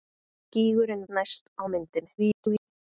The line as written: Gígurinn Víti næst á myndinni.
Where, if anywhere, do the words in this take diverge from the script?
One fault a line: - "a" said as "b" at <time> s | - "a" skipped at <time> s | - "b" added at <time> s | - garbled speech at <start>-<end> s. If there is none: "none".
- "Víti" skipped at 1.0 s
- garbled speech at 2.2-2.7 s